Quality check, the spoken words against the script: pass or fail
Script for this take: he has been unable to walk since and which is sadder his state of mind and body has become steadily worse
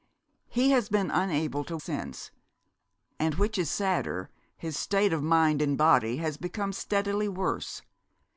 fail